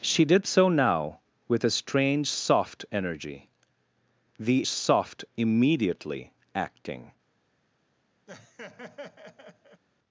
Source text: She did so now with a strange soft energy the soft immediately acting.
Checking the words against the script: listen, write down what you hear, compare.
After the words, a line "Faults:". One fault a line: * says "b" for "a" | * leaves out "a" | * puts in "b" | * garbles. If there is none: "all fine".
She did so now with a strange soft energy the soft immediately acting.
Faults:
all fine